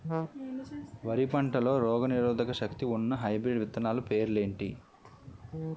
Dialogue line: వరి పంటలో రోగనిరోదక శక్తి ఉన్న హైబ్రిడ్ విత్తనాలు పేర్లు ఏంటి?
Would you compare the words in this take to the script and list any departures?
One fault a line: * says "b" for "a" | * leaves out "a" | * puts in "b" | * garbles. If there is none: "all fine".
all fine